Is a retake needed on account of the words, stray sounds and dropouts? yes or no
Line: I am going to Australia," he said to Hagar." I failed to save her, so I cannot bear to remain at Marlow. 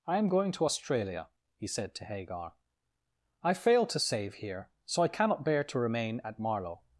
yes